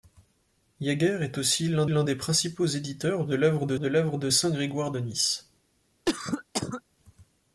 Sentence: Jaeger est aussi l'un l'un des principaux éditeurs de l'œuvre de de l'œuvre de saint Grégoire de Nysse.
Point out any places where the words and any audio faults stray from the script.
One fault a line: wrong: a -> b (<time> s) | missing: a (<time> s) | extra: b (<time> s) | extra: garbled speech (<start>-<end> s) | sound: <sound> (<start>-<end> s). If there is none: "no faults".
sound: cough (6.1-6.8 s)